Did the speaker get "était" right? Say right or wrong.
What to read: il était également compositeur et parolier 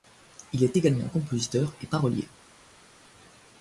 wrong